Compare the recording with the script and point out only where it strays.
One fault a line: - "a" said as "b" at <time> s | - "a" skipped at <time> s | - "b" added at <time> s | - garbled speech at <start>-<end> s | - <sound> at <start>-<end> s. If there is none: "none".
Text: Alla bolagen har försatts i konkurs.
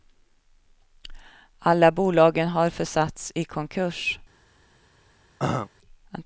- throat clearing at 5.4-5.7 s